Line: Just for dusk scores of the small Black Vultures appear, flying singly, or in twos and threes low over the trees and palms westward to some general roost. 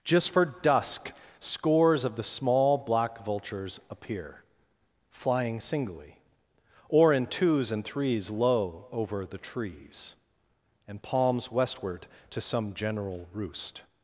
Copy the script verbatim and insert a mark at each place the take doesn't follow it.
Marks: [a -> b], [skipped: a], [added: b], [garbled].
Just for dusk scores of the small Black Vultures appear, flying singly, or in twos and threes low over the trees and palms westward to some general roost.